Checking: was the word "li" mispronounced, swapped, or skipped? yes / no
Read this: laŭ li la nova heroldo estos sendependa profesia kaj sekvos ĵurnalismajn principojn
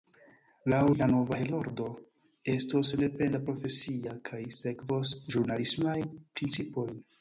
yes